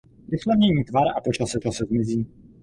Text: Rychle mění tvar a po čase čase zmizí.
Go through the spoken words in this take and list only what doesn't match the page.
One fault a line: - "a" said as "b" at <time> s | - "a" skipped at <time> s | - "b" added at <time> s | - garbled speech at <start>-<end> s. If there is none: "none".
none